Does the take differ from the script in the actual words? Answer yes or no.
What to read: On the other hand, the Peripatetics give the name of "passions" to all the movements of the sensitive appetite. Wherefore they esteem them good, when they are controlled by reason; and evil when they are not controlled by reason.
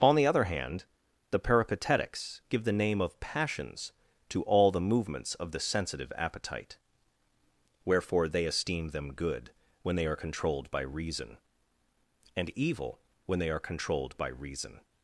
yes